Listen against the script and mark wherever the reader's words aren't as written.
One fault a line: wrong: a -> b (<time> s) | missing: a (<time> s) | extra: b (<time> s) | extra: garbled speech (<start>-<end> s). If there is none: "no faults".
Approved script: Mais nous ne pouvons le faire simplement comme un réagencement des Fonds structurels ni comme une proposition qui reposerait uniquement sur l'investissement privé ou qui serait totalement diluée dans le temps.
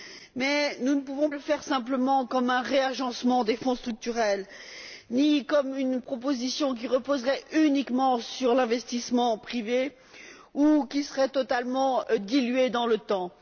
no faults